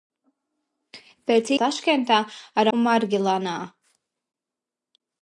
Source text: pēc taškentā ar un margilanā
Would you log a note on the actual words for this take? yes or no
no